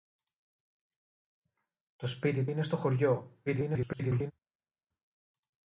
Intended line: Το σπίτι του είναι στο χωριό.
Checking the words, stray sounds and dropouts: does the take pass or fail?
fail